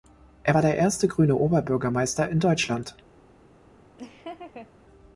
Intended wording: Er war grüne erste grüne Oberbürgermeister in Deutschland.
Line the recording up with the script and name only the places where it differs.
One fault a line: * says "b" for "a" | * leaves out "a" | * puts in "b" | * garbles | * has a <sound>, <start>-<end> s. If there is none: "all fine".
* says "der" for "grüne"
* has a laugh, 4.0-4.7 s